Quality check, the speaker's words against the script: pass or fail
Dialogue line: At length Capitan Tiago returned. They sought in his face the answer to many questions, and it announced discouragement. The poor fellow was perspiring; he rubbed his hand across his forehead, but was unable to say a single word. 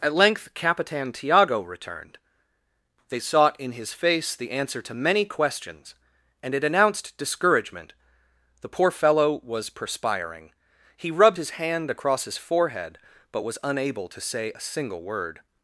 pass